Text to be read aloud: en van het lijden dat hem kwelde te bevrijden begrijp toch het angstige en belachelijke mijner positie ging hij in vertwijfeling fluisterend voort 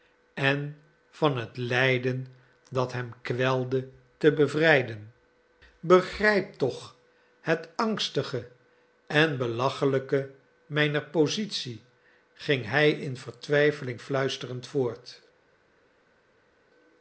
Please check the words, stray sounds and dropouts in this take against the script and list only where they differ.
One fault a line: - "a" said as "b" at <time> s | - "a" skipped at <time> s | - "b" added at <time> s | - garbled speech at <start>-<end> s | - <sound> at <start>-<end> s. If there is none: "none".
none